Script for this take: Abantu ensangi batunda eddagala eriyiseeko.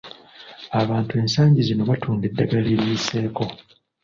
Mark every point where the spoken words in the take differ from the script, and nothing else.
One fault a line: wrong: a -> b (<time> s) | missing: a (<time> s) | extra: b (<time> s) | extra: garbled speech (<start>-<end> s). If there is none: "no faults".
extra: zino (1.7 s)